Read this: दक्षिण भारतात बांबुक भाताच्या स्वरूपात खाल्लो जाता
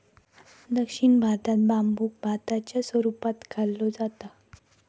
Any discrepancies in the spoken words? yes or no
no